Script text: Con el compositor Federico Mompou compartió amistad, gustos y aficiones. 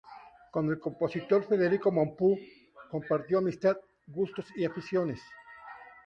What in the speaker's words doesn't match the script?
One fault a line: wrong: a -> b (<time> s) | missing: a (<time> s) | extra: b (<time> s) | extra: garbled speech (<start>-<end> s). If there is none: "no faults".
no faults